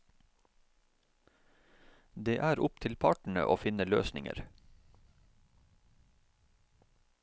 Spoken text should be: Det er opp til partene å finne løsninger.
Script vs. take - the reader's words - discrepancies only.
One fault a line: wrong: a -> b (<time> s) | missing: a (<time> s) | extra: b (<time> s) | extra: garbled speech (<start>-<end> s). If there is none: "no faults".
no faults